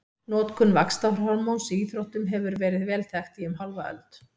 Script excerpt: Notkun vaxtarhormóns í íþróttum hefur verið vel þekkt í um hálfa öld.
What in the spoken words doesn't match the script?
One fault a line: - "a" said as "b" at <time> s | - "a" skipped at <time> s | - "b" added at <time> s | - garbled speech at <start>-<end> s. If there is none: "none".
none